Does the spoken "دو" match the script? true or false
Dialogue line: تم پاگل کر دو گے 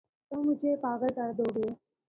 true